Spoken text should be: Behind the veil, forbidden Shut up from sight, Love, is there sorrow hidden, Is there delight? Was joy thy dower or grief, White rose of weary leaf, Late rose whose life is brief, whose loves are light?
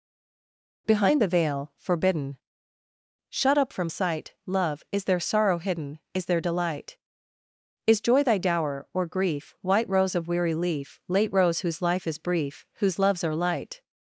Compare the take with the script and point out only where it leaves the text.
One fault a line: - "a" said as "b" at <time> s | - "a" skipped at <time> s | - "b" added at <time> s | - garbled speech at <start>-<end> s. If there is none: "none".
- "Was" said as "Is" at 7.9 s